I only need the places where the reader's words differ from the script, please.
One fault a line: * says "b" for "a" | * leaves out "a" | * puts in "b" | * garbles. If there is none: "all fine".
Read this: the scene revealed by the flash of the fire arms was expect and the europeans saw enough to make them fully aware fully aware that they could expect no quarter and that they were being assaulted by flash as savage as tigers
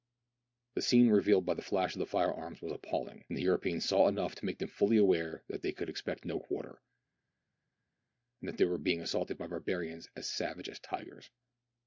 * says "appalling" for "expect"
* leaves out "fully aware"
* says "barbarians" for "flash"